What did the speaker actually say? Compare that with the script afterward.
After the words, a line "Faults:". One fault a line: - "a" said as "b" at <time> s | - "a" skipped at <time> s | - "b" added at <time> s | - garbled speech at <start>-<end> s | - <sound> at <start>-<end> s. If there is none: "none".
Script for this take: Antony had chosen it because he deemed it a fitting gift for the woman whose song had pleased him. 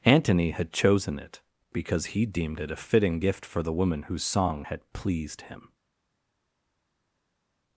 Antony had chosen it because he deemed it a fitting gift for the woman whose song had pleased him.
Faults:
none